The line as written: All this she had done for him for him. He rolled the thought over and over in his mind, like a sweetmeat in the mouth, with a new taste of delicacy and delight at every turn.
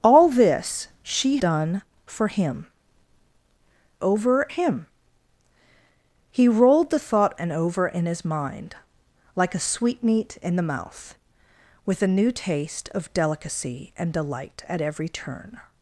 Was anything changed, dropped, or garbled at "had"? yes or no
yes